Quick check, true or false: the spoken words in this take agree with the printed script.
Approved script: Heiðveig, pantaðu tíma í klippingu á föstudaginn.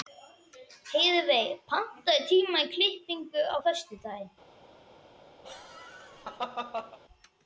true